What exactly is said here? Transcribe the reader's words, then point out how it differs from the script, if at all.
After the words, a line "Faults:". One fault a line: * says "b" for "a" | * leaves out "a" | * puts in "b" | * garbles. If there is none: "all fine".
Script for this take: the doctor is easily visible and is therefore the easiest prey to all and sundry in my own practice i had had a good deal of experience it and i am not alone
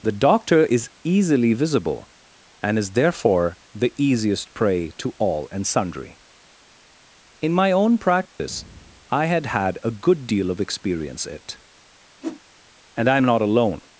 the doctor is easily visible and is therefore the easiest prey to all and sundry in my own practice i had had a good deal of experience it and i am not alone
Faults:
all fine